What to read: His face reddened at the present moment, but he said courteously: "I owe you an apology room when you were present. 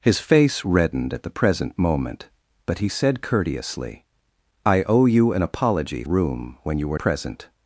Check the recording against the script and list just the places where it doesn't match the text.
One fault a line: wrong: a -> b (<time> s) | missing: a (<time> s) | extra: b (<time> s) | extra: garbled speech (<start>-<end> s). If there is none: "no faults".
no faults